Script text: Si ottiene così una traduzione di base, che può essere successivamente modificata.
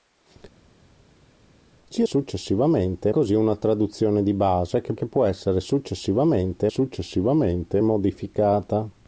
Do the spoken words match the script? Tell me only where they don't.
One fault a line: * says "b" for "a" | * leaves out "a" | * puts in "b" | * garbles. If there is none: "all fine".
* says "successivamente" for "ottiene"
* puts in "che"
* puts in "successivamente"